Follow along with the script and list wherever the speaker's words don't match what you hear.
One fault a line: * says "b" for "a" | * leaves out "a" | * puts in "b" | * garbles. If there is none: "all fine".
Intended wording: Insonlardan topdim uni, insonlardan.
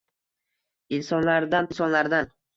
* leaves out "topdim uni"